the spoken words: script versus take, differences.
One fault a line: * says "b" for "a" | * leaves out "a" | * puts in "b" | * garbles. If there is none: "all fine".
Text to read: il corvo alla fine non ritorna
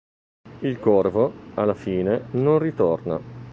all fine